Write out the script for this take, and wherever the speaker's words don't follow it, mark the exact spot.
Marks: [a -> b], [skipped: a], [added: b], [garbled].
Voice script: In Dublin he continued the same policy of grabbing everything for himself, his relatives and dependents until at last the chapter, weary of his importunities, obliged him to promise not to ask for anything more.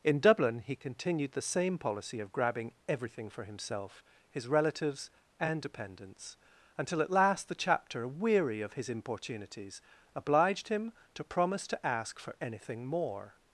In Dublin he continued the same policy of grabbing everything for himself, his relatives and dependents until at last the chapter, weary of his importunities, obliged him to promise [skipped: not] to ask for anything more.